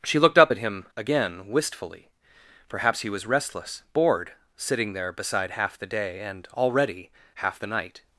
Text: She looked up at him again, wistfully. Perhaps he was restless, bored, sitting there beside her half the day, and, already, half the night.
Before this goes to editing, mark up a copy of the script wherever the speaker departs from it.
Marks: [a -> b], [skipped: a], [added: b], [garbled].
She looked up at him again, wistfully. Perhaps he was restless, bored, sitting there beside [skipped: her] half the day, and, already, half the night.